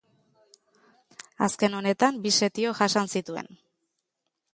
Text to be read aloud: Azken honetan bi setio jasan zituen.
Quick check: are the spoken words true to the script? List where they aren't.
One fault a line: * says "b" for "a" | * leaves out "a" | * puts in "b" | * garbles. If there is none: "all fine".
all fine